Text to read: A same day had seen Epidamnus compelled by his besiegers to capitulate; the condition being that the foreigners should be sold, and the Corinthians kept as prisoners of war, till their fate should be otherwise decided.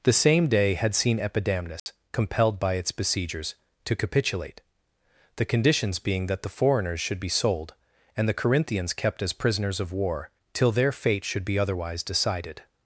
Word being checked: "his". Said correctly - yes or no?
no